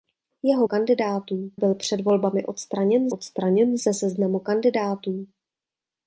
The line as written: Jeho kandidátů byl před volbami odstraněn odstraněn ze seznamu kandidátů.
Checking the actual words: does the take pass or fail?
pass